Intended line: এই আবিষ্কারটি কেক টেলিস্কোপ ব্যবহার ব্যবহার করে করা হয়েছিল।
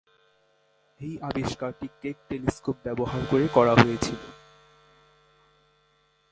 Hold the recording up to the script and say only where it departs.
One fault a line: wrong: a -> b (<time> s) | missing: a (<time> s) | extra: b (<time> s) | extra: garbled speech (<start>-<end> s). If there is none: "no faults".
missing: ব্যবহার (3.2 s)